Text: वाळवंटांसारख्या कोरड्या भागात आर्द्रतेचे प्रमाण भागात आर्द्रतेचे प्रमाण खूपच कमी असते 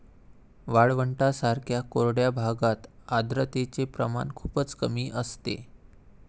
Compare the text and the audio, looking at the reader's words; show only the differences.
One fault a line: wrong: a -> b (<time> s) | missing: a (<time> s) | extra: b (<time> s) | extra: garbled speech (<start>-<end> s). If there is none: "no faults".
missing: भागात आर्द्रतेचे प्रमाण (4.3 s)